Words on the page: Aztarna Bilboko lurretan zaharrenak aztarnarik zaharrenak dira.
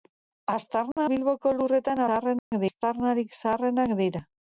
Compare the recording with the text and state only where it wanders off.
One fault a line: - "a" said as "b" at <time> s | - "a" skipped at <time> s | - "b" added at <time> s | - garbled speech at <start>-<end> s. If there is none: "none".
none